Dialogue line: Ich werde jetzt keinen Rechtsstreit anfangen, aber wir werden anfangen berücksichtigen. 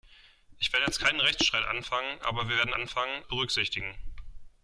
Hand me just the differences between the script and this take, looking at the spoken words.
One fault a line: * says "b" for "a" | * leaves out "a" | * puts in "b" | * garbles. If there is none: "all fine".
all fine